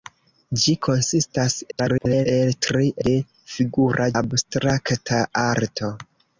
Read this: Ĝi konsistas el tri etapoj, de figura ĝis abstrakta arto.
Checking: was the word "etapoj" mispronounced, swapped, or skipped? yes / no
yes